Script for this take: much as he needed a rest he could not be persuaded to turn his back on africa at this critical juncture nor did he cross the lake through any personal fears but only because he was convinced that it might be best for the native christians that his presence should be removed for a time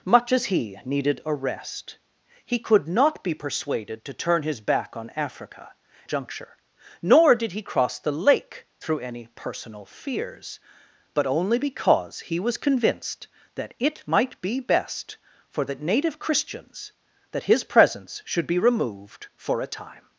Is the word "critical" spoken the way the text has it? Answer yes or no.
no